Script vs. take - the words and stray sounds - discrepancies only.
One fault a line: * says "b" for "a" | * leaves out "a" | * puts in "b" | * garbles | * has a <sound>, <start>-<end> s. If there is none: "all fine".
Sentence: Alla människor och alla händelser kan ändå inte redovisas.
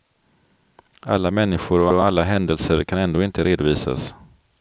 * puts in "och"